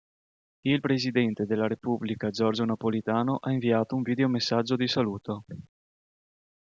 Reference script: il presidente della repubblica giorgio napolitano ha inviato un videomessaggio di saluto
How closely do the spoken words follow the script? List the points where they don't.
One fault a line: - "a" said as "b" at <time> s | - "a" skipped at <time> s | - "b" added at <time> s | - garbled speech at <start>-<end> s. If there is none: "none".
none